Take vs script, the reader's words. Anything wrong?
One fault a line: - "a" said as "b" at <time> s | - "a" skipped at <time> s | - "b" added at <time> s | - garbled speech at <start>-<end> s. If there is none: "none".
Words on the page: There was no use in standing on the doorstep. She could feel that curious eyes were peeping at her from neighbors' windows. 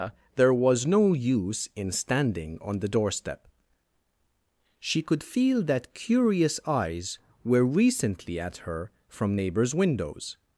- "peeping" said as "recently" at 7.8 s